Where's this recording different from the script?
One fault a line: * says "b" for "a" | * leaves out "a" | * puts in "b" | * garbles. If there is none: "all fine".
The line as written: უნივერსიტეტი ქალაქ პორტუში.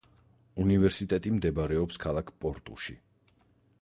* puts in "მდებარეობს"